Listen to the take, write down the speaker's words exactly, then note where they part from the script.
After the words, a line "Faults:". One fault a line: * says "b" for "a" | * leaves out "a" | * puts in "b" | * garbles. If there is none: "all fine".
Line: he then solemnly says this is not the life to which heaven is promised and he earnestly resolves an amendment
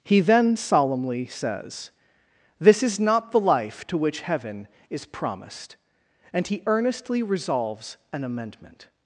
he then solemnly says this is not the life to which heaven is promised and he earnestly resolves an amendment
Faults:
all fine